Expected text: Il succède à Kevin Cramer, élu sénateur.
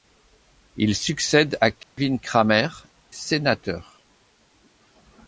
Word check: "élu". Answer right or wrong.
wrong